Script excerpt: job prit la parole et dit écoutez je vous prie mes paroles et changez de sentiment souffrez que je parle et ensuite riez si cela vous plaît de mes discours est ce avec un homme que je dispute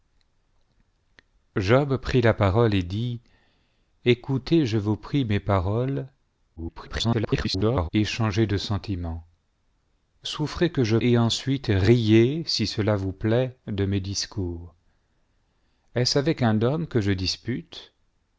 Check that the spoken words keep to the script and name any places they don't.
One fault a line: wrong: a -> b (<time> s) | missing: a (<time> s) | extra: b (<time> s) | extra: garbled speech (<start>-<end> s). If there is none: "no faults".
extra: garbled speech (6.6-7.9 s)
missing: parle (11.0 s)